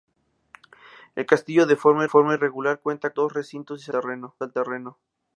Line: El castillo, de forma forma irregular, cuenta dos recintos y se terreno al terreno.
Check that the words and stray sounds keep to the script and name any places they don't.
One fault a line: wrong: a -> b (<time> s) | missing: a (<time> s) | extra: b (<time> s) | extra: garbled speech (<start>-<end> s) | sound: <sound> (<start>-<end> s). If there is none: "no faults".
no faults